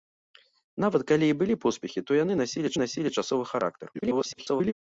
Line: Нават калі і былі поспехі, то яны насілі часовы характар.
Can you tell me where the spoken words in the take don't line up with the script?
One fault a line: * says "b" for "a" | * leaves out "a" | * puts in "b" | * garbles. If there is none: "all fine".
* puts in "насілі"
* garbles